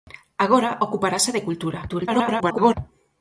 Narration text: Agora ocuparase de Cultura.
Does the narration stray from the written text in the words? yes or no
yes